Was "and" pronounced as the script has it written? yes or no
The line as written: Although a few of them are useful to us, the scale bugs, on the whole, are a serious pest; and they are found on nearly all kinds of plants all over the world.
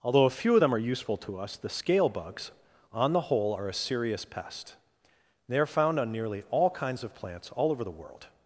no